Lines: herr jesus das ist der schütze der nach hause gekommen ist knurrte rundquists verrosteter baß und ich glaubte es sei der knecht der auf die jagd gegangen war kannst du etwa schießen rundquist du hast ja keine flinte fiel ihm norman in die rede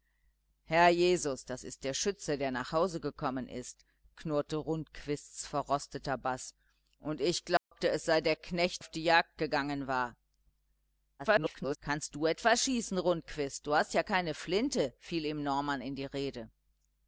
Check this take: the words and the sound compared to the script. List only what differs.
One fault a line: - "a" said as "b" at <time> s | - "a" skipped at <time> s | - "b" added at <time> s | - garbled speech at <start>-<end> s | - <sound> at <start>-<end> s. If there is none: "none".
- dropout at 7.6-7.7 s
- "der" skipped at 8.8 s
- garbled speech at 11.2-11.8 s